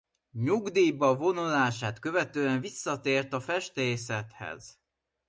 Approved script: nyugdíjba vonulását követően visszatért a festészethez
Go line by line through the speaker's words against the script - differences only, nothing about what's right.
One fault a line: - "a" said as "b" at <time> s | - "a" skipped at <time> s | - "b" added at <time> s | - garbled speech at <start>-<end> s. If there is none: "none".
none